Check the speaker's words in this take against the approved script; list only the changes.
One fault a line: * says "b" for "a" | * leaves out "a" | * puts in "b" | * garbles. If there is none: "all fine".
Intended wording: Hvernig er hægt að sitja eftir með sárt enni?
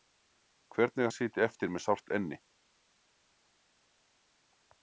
* leaves out "hægt"